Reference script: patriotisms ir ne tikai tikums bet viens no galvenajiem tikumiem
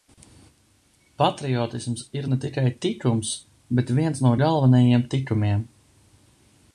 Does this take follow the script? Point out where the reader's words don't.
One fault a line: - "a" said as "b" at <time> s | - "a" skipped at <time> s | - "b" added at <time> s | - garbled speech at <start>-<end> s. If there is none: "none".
none